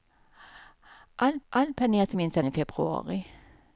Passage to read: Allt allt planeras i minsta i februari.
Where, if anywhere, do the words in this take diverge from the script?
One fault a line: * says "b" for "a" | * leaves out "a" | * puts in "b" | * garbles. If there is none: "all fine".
all fine